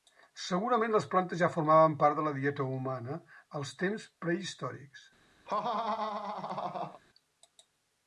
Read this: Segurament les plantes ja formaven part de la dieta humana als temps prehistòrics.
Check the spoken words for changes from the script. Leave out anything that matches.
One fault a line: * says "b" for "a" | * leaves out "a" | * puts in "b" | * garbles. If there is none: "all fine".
all fine